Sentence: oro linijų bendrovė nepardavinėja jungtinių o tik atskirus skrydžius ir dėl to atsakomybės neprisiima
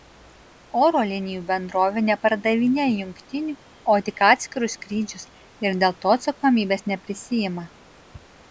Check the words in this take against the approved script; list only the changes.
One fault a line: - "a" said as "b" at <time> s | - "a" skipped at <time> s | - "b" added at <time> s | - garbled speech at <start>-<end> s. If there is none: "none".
none